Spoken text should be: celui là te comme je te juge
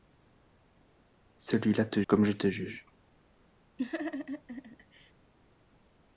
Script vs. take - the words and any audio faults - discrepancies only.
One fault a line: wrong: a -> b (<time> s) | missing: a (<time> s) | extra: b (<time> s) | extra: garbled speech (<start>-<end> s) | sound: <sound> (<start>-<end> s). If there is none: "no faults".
sound: laugh (3.8-5.1 s)